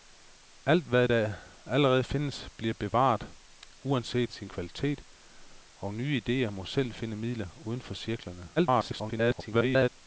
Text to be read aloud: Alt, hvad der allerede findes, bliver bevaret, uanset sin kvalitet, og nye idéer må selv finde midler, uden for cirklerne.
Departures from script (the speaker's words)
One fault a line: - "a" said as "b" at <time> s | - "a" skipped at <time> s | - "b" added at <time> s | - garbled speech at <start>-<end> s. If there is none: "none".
- garbled speech at 8.6-9.9 s